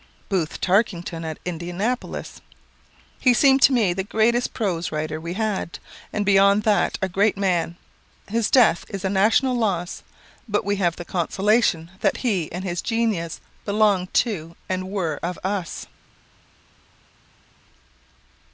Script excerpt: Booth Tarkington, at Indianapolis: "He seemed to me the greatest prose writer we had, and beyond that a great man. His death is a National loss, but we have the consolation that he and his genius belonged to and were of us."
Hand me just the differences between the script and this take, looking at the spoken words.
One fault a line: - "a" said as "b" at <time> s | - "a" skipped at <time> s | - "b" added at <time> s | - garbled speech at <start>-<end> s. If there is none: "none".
none